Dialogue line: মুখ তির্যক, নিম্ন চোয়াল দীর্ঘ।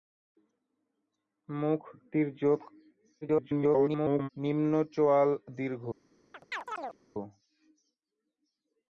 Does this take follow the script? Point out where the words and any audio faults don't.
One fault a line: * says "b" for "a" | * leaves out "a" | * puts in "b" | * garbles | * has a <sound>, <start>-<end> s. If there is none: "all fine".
* garbles
* has a chirp, 6.3-7.0 s